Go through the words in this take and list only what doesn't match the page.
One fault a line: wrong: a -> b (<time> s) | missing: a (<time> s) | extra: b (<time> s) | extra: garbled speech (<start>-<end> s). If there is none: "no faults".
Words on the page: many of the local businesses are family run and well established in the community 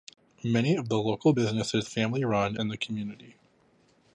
missing: are (1.9 s)
missing: and well established (2.6 s)